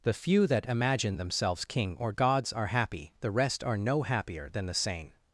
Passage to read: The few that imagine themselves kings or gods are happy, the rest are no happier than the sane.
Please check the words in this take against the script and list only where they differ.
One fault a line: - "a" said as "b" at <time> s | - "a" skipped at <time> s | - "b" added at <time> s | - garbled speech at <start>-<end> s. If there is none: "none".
- "kings" said as "king" at 1.6 s